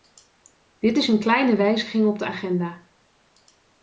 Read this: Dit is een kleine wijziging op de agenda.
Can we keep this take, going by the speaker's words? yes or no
yes